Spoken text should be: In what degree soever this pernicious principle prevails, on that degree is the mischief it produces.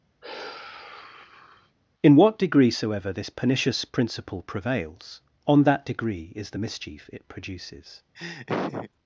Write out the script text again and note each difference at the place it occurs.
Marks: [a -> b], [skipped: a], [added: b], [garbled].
In what degree soever this pernicious principle prevails, on that degree is the mischief it produces.